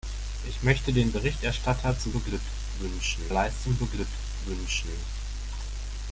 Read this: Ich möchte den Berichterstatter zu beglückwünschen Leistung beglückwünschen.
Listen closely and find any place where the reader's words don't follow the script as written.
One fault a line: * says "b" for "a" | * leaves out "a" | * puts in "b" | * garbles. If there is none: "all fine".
all fine